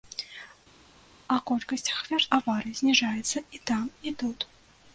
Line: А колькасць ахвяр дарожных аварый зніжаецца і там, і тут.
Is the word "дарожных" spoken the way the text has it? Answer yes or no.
no